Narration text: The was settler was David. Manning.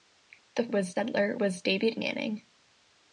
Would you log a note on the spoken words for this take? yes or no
no